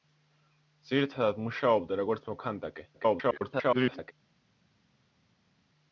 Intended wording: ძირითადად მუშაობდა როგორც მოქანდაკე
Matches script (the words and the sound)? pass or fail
fail